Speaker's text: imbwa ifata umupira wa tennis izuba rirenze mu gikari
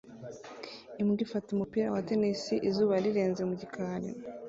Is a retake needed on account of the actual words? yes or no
no